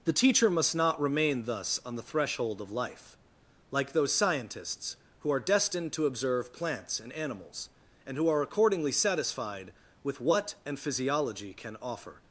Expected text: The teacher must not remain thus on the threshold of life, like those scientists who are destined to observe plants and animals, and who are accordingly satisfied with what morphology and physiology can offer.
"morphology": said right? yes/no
no